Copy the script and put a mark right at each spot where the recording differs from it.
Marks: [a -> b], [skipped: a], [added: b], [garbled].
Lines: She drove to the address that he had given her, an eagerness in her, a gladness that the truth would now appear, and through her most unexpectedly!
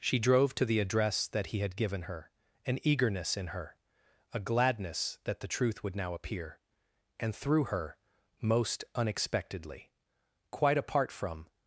She drove to the address that he had given her, an eagerness in her, a gladness that the truth would now appear, and through her most unexpectedly! [added: Quite apart from]